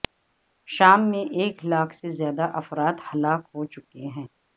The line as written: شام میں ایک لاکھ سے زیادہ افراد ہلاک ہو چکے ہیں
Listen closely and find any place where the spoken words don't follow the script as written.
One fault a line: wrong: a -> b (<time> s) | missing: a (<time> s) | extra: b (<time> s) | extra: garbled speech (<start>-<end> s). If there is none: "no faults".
no faults